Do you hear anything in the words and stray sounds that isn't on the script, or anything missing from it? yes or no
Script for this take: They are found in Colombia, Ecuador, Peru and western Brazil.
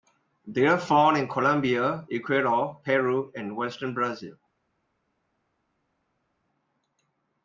no